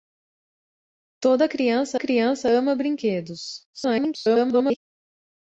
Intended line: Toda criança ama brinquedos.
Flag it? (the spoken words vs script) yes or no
yes